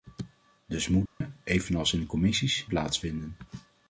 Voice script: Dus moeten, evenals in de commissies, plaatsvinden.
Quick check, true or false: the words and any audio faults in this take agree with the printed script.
false